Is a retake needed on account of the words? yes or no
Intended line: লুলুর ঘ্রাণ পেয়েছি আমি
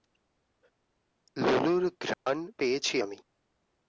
no